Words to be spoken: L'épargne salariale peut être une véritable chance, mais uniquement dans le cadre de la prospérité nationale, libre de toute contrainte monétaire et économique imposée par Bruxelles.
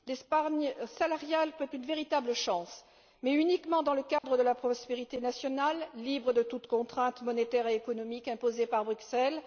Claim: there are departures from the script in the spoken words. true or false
true